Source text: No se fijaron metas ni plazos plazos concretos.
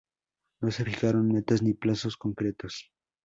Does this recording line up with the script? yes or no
no